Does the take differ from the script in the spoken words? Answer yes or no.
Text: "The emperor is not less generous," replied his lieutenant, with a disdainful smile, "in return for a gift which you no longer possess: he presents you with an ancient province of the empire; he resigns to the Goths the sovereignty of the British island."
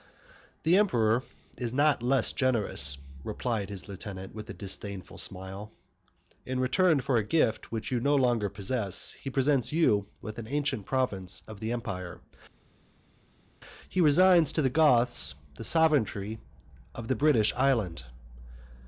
no